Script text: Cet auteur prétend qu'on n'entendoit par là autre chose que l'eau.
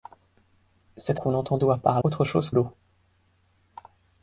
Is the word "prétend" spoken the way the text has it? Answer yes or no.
no